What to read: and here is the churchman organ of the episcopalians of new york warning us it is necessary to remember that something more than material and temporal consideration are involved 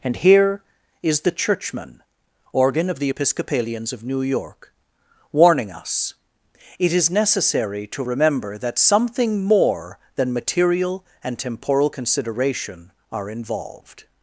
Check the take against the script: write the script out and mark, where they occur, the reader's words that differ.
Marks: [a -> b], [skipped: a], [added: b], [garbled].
and here is the churchman organ of the episcopalians of new york warning us it is necessary to remember that something more than material and temporal consideration are involved